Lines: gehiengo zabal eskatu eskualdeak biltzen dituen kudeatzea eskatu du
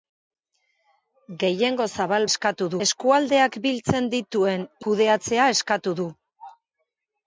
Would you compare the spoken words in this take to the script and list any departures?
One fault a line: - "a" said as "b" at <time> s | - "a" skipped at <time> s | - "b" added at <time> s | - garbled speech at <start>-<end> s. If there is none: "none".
none